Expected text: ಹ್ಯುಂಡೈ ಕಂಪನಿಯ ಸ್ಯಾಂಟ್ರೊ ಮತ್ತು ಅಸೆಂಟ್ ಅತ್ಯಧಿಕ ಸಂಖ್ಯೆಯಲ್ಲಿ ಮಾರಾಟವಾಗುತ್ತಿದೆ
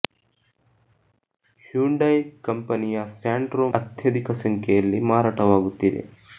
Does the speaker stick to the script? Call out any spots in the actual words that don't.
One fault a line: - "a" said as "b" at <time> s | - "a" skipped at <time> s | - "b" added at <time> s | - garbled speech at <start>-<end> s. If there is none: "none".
- "ಮತ್ತು ಅಸೆಂಟ್" skipped at 3.7 s